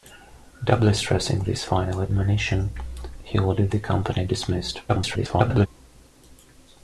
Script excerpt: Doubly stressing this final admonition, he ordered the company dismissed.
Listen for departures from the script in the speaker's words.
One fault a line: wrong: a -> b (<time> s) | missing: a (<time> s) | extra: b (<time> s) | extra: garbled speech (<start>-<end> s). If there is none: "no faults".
extra: garbled speech (4.9-5.7 s)